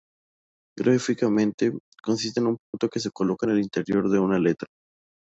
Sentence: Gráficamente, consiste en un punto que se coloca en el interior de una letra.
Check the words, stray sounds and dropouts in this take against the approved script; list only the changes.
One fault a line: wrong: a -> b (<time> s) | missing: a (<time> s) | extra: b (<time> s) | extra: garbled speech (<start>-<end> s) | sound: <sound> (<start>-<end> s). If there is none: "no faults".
sound: dropout (2.6-2.7 s)